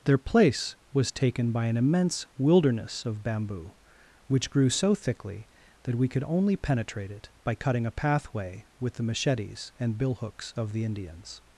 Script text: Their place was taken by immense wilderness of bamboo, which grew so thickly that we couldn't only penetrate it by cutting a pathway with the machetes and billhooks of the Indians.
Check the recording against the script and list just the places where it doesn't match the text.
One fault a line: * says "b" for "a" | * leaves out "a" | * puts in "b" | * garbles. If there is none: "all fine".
* puts in "an"
* says "could" for "couldn't"